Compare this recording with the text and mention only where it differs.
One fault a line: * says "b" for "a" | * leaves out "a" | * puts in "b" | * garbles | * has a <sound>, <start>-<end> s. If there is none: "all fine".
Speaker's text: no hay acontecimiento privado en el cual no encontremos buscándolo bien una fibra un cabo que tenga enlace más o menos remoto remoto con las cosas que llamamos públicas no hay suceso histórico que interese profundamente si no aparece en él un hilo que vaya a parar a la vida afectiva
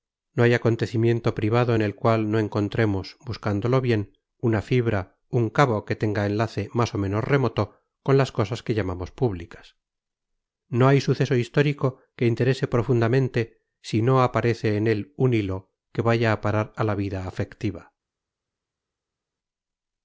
* leaves out "remoto"